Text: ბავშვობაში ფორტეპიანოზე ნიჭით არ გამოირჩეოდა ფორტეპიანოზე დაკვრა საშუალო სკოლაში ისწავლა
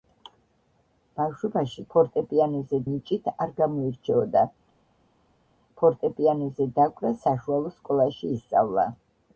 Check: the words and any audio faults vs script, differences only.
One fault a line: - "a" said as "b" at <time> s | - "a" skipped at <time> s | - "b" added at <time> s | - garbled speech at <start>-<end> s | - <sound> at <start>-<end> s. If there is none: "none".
none